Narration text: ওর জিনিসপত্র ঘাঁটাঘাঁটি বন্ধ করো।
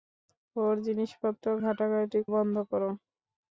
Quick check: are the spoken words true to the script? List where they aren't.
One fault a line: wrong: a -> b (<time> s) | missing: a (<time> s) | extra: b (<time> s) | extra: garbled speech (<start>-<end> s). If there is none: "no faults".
no faults